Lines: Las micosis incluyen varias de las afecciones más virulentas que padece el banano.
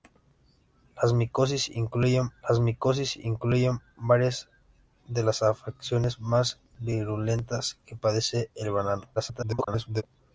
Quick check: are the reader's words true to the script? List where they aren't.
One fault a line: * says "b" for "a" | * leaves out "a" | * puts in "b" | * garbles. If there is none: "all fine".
* puts in "las micosis incluyen"
* garbles